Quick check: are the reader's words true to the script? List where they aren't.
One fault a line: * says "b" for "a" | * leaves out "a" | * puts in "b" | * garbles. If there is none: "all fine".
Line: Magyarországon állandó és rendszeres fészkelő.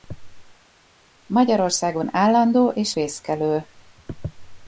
* leaves out "rendszeres"